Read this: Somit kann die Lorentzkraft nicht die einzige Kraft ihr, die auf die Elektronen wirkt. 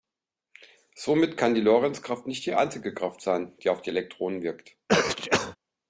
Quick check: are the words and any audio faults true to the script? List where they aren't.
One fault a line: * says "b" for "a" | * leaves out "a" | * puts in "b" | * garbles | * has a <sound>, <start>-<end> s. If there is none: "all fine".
* says "sein" for "ihr"
* has a sneeze, 4.9-5.6 s